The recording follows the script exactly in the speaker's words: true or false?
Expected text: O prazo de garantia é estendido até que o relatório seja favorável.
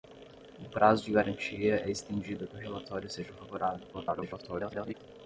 false